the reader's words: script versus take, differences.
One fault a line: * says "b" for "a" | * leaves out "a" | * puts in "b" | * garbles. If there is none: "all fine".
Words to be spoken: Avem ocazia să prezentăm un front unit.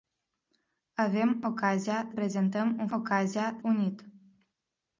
* leaves out "să"
* says "ocazia" for "front"